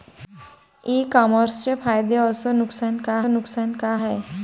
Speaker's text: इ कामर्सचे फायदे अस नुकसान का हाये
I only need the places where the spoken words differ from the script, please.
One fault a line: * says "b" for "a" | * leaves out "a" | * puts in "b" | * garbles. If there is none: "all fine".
* puts in "नुकसान का"